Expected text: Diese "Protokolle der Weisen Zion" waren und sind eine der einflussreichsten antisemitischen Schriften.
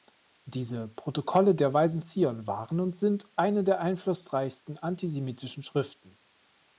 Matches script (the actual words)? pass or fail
pass